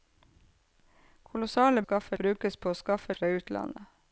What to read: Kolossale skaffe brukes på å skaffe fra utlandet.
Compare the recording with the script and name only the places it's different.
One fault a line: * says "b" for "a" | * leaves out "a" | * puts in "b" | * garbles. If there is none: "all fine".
all fine